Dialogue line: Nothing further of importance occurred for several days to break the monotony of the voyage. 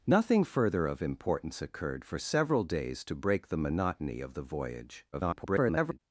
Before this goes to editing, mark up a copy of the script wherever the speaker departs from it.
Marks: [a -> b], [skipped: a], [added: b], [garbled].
Nothing further of importance occurred for several days to break the monotony of the voyage. [garbled]